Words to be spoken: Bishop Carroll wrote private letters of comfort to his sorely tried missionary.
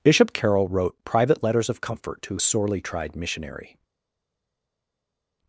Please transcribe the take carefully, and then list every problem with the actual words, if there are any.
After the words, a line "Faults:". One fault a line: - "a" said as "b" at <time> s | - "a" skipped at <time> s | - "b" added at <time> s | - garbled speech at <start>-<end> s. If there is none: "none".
Bishop Carroll wrote private letters of comfort to sorely tried missionary.
Faults:
- "his" skipped at 2.4 s